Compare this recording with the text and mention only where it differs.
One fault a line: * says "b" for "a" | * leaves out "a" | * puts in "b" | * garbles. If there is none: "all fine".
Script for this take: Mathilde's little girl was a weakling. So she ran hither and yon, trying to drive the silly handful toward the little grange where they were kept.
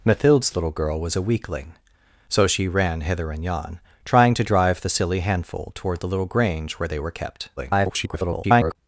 * garbles